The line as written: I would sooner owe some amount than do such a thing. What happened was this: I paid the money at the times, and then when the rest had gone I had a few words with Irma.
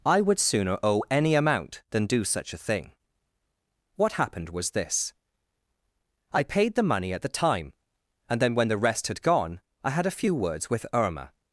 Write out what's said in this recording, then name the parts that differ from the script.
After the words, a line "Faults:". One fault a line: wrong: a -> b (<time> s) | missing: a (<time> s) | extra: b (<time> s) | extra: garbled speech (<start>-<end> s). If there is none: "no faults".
I would sooner owe any amount than do such a thing. What happened was this: I paid the money at the time, and then when the rest had gone I had a few words with Irma.
Faults:
wrong: some -> any (1.1 s)
wrong: times -> time (7.3 s)